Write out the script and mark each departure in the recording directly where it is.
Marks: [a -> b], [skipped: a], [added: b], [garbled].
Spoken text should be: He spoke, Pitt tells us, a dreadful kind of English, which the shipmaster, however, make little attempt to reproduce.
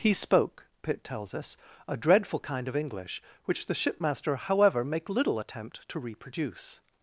He spoke, Pitt tells us, a dreadful kind of English, which the shipmaster, however, make little attempt to reproduce.